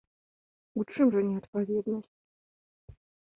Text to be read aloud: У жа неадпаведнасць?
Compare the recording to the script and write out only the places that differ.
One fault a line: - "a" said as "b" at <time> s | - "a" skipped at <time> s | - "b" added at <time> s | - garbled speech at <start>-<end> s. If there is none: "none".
- "чым" added at 0.9 s